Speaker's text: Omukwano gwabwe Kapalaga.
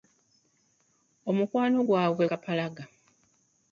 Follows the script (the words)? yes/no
yes